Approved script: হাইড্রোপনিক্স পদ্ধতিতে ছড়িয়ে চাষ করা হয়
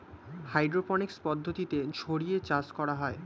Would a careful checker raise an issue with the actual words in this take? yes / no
no